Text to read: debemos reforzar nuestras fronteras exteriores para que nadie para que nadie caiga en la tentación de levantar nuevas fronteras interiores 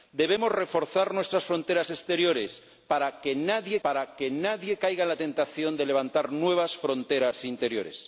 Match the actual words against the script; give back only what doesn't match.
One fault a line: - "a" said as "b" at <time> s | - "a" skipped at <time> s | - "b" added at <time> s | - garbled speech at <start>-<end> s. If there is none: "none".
none